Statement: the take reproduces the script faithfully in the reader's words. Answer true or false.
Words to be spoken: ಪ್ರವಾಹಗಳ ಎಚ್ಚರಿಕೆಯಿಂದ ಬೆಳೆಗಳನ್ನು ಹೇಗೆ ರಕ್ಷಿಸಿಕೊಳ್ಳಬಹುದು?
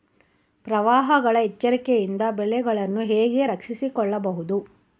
true